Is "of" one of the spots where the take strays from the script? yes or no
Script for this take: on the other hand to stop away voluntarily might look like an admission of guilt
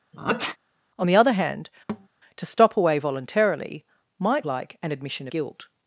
yes